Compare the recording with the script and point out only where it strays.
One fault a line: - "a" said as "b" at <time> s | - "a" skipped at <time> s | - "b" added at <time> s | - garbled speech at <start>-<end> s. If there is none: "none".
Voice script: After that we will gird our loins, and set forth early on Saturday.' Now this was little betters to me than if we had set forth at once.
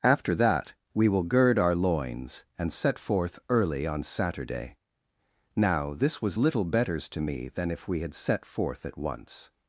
none